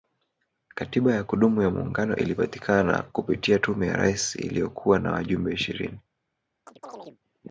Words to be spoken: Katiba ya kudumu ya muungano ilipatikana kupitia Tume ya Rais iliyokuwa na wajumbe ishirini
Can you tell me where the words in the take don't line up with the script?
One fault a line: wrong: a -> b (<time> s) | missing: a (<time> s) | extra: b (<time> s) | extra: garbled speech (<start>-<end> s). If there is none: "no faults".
no faults